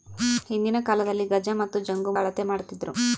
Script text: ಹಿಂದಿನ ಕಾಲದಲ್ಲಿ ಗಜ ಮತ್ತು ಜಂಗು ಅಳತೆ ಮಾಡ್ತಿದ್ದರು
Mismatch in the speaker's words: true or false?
false